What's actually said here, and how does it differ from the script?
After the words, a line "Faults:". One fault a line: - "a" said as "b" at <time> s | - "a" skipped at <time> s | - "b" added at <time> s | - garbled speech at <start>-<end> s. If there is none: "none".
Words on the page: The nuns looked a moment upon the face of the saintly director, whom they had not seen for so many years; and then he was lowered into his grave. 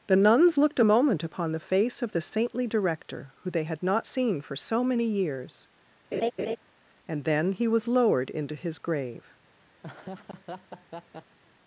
The nuns looked a moment upon the face of the saintly director, who they had not seen for so many years; and then he was lowered into his grave.
Faults:
- "whom" said as "who" at 3.4 s